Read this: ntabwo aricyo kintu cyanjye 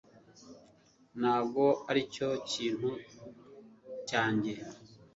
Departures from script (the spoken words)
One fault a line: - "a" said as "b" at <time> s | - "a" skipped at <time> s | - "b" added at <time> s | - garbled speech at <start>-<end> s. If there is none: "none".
none